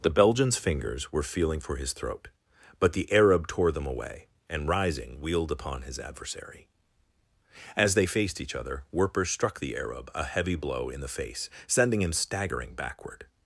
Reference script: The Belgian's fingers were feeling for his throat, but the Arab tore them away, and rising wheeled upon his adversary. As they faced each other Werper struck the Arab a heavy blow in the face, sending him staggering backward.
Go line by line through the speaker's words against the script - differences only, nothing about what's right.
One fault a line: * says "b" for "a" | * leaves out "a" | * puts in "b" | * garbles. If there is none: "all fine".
all fine